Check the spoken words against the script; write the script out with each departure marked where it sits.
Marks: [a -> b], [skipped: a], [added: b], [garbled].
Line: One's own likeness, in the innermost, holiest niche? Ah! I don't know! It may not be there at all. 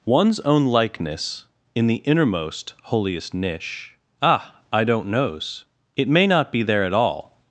One's own likeness, in the innermost, holiest niche? Ah! I don't [know! -> knows] It may not be there at all.